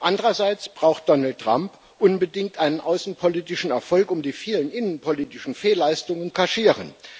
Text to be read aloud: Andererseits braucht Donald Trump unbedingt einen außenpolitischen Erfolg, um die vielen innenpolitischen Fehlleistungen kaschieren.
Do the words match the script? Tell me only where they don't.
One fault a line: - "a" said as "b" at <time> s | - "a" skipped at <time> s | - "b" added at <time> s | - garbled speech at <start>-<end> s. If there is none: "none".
none